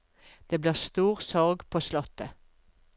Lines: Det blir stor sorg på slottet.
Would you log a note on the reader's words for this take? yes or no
no